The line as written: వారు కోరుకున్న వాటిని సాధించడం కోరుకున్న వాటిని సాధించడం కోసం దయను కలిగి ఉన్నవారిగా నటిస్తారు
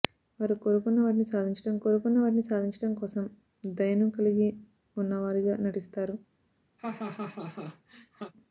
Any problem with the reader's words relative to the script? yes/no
no